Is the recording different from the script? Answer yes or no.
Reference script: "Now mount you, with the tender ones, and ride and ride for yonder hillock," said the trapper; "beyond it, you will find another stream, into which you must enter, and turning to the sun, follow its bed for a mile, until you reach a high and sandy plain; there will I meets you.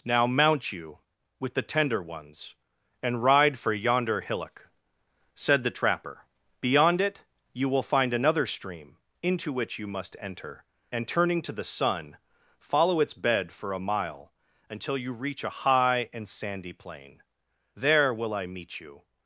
yes